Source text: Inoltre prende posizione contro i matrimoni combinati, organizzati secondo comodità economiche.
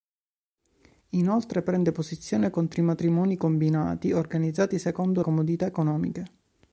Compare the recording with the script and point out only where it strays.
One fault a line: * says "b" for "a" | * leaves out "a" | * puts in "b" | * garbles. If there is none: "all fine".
all fine